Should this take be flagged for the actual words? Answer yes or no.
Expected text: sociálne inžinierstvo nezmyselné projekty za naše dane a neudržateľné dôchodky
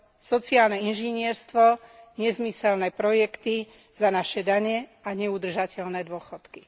no